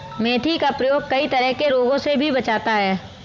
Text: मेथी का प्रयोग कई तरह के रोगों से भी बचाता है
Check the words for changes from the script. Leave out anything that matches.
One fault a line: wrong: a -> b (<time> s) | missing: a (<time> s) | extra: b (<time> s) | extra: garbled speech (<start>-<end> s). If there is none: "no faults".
no faults